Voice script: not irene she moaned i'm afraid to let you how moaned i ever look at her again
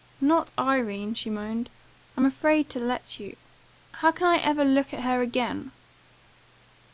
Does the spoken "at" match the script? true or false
true